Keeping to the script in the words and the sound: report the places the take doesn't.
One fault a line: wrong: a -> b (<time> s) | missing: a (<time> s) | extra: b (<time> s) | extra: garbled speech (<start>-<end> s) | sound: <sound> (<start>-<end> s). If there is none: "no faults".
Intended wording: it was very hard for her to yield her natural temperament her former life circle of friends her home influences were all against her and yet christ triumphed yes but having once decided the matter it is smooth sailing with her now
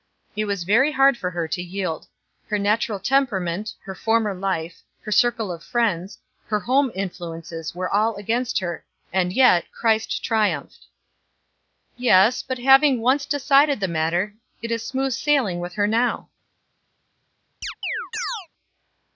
extra: her (5.0 s)
sound: chirp (17.6-18.5 s)